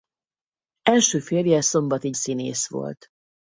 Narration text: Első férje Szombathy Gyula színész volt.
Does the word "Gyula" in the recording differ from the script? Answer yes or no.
yes